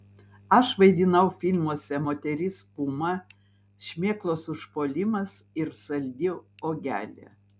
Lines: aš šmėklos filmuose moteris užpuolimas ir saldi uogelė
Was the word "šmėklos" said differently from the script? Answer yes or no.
yes